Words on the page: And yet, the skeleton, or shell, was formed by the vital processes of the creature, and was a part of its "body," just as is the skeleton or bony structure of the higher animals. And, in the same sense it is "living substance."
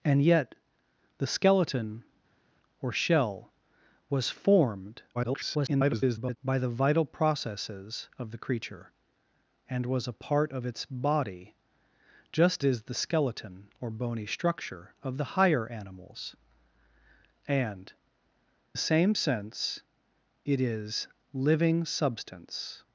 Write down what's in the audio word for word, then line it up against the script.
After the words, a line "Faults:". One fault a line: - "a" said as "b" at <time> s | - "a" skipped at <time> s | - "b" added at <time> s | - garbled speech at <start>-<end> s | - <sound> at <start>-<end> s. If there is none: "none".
And yet, the skeleton, or shell, was formed [garbled] by the vital processes of the creature, and was a part of its "body," just is the skeleton or bony structure of the higher animals. And, the same sense it is "living substance."
Faults:
- garbled speech at 5.1-6.4 s
- "as" skipped at 12.6 s
- "in" skipped at 17.9 s